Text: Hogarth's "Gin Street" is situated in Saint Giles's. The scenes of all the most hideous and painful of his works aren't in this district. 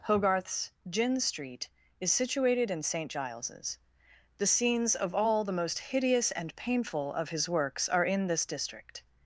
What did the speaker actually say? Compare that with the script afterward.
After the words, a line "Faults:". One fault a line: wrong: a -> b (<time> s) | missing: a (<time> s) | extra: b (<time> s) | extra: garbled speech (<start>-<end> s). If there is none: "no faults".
Hogarth's "Gin Street" is situated in Saint Giles's. The scenes of all the most hideous and painful of his works are in this district.
Faults:
wrong: aren't -> are (7.9 s)